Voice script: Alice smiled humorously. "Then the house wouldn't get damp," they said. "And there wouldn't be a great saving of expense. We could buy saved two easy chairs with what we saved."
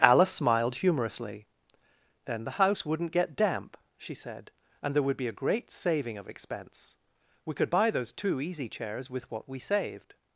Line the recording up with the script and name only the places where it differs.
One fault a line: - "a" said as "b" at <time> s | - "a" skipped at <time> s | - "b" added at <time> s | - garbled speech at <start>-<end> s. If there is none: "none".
- "they" said as "she" at 4.0 s
- "wouldn't" said as "would" at 5.0 s
- "saved" said as "those" at 7.9 s